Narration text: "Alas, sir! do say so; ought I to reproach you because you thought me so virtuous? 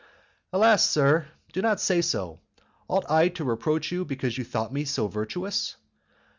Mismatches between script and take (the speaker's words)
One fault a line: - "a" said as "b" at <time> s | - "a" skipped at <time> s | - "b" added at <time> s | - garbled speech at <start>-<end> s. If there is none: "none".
- "not" added at 1.6 s